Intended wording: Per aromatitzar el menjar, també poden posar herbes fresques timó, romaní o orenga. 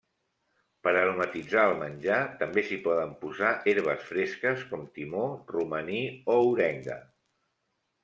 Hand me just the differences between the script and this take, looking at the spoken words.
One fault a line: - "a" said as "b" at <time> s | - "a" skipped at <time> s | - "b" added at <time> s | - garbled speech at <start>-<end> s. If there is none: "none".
- "s'hi" added at 2.7 s
- "com" added at 4.7 s